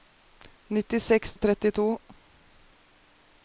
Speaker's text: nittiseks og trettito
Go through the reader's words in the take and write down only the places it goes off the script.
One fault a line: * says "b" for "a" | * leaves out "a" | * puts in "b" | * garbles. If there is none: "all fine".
all fine